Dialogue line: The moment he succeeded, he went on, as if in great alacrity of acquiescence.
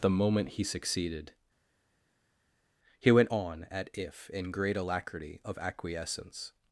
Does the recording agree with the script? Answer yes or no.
no